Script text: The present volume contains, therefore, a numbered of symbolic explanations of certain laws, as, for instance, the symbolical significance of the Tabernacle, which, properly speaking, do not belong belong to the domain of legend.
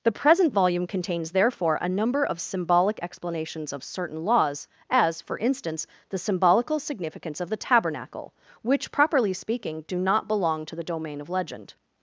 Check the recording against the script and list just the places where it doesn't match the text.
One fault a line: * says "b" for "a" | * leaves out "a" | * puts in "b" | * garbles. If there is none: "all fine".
* says "number" for "numbered"
* leaves out "belong"